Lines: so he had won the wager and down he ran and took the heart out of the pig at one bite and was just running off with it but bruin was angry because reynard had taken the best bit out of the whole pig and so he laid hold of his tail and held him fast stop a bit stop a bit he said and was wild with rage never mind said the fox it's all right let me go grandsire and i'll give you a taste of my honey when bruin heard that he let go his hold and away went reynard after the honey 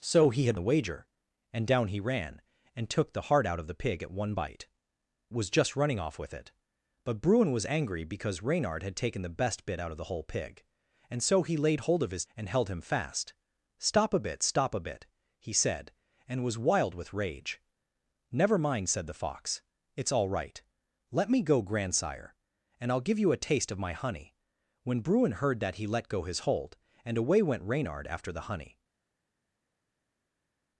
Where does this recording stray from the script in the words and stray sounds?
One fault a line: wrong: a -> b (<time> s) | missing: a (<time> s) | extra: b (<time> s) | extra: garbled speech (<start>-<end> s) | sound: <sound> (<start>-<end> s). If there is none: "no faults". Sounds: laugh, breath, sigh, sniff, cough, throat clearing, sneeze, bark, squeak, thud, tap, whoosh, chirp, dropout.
missing: won (0.6 s)
missing: and (4.7 s)
missing: tail (12.2 s)